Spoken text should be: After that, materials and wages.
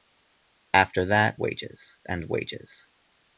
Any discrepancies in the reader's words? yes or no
yes